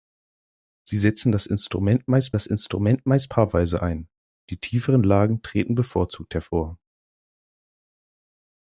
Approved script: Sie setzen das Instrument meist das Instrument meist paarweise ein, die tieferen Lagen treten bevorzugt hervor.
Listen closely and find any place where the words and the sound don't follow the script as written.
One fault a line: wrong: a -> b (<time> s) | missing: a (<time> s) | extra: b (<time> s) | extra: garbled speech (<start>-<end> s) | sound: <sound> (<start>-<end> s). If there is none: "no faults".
no faults